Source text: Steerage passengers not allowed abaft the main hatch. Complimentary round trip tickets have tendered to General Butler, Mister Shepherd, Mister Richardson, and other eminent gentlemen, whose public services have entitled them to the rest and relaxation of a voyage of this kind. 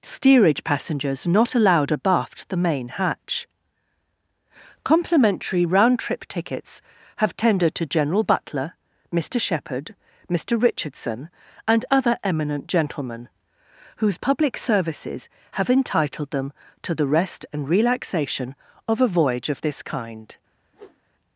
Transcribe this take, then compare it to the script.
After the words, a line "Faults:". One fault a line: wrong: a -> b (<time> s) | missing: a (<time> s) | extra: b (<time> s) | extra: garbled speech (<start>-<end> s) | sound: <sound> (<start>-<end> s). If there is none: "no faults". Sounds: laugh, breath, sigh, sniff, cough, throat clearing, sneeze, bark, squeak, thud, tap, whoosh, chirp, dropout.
Steerage passengers not allowed abaft the main hatch. Complimentary round trip tickets have tendered to General Butler, Mister Shepherd, Mister Richardson, and other eminent gentlemen, whose public services have entitled them to the rest and relaxation of a voyage of this kind.
Faults:
sound: whoosh (20.7-21.0 s)